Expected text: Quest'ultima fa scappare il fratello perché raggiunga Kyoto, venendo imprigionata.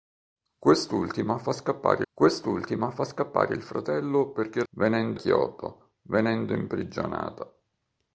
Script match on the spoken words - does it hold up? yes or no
no